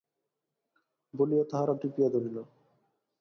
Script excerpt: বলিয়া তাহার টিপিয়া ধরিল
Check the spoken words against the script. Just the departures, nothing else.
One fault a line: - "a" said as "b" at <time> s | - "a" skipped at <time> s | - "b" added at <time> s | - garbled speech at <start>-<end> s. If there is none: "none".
none